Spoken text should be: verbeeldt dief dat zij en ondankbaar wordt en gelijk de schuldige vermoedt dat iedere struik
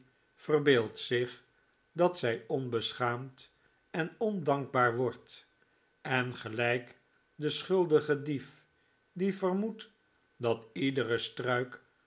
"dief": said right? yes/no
no